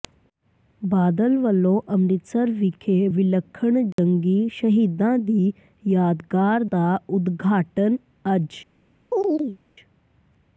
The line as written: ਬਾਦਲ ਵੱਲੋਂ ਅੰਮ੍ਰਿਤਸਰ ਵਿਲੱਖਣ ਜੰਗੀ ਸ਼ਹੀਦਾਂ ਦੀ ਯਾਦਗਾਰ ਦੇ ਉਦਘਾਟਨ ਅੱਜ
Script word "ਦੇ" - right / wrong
wrong